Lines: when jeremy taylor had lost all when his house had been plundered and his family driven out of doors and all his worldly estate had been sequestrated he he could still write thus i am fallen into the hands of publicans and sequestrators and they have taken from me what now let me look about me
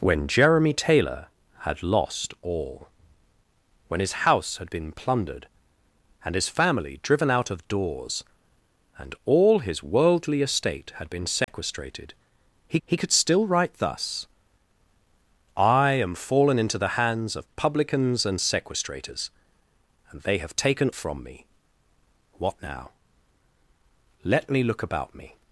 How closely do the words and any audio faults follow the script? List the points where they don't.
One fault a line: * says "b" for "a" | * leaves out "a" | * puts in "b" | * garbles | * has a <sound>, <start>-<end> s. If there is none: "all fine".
* has a dropout, 11.4-11.5 s